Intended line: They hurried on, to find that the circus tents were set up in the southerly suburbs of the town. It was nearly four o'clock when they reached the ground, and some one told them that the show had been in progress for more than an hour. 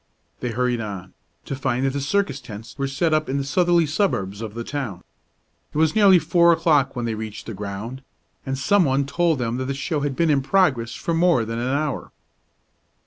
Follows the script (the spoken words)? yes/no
yes